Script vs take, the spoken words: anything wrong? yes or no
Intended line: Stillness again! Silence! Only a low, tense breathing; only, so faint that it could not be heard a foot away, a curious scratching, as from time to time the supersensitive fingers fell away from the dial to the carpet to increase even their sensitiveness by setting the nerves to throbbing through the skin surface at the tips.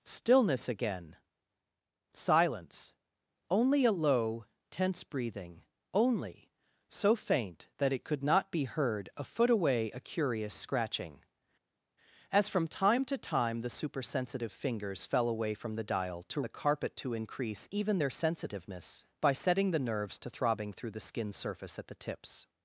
no